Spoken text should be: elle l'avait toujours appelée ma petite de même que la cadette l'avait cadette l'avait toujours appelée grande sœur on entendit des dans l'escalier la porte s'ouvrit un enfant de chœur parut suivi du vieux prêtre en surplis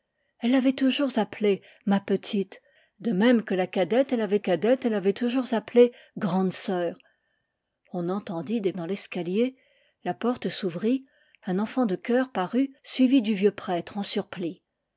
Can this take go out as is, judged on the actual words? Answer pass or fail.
pass